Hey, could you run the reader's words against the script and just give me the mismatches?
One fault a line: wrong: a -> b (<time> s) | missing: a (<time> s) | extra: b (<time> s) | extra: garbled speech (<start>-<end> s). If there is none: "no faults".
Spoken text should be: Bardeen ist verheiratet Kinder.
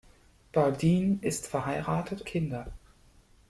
no faults